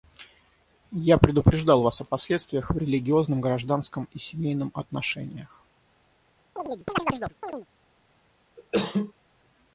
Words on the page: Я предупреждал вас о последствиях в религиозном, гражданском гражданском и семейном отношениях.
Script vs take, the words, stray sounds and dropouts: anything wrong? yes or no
yes